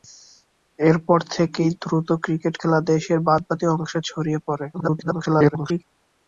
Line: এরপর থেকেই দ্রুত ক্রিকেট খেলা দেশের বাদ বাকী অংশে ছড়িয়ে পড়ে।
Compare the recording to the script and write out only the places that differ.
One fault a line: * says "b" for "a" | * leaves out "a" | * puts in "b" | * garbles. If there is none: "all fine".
* garbles